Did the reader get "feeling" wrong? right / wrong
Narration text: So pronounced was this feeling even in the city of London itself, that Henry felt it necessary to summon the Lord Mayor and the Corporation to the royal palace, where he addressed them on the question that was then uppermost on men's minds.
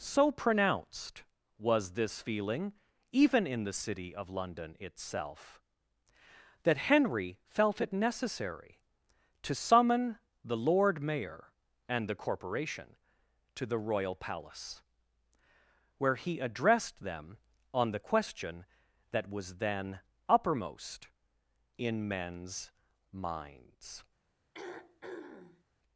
right